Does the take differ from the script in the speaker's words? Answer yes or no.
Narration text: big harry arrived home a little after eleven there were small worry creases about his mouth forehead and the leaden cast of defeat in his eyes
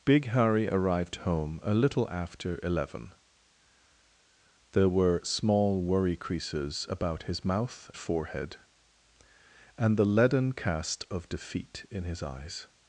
no